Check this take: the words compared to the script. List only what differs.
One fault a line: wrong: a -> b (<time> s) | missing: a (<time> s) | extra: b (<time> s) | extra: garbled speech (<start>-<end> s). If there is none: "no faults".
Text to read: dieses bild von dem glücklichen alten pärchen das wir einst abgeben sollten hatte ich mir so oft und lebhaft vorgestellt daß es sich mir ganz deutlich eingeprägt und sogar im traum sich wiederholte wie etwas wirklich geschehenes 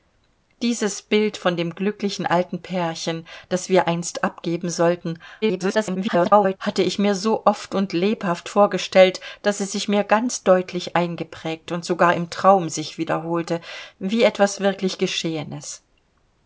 extra: garbled speech (5.4-6.6 s)